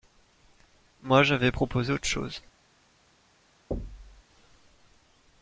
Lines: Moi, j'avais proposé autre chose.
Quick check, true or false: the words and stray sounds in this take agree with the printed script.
false